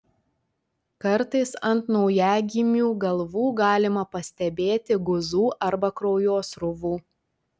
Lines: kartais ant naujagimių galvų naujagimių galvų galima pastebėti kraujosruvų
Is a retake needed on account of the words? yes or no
yes